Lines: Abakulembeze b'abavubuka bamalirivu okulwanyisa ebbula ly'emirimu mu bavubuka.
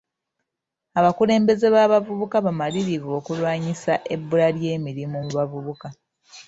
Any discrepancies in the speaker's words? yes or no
no